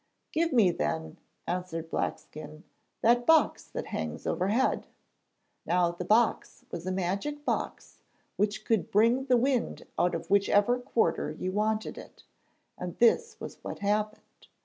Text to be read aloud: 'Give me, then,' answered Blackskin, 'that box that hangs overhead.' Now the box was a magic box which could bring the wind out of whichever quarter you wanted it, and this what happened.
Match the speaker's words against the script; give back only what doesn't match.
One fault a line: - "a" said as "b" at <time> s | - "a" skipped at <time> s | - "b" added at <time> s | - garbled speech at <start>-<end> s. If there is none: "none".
- "was" added at 13.4 s